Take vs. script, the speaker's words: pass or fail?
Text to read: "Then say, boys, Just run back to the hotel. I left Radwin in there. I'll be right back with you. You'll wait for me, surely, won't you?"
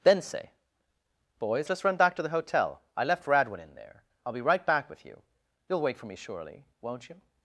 pass